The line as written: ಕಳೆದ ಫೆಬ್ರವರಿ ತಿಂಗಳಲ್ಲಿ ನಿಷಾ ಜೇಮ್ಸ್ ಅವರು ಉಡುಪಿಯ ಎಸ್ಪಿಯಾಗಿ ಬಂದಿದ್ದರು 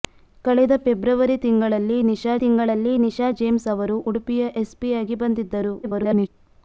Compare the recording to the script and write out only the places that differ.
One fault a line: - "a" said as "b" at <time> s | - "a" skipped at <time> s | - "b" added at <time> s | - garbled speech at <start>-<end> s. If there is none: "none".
- "ತಿಂಗಳಲ್ಲಿ ನಿಷಾ" added at 2.4 s
- garbled speech at 5.8-6.3 s